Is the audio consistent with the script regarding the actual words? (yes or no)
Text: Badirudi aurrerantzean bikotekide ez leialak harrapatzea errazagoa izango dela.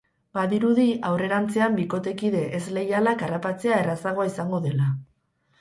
yes